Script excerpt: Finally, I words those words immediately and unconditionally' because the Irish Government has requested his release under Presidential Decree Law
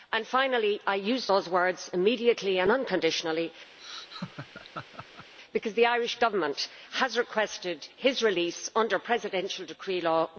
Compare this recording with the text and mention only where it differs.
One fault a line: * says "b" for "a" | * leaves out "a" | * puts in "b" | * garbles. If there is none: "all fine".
* says "use" for "words"